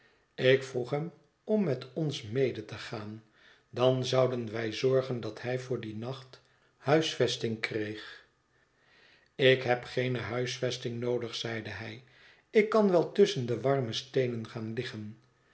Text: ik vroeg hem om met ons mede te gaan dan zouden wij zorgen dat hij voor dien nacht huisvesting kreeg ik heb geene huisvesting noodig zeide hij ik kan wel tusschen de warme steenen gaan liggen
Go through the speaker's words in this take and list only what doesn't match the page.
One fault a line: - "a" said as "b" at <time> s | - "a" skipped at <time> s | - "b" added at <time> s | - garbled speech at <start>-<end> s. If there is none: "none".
none